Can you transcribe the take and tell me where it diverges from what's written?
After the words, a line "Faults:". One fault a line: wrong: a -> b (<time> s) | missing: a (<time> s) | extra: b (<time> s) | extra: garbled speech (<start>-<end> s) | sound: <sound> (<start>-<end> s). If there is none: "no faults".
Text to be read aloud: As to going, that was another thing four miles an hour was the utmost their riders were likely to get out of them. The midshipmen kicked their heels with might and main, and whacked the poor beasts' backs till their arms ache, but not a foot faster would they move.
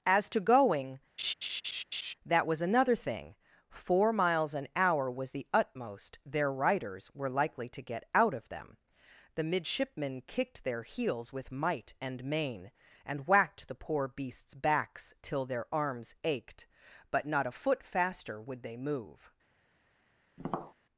As to going, that was another thing four miles an hour was the utmost their riders were likely to get out of them. The midshipmen kicked their heels with might and main, and whacked the poor beasts' backs till their arms ached, but not a foot faster would they move.
Faults:
sound: laugh (1.2-2.1 s)
wrong: ache -> ached (16.2 s)
sound: tap (20.4-20.7 s)